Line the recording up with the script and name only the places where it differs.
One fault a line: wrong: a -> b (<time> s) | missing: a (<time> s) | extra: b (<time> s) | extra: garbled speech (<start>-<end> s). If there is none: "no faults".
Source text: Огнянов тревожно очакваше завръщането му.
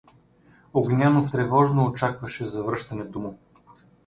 no faults